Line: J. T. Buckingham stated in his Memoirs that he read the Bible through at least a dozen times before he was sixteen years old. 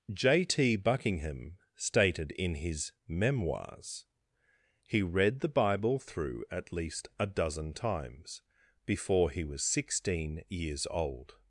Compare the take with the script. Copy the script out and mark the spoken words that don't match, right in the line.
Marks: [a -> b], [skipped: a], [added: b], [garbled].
J. T. Buckingham stated in his Memoirs [skipped: that] he read the Bible through at least a dozen times before he was sixteen years old.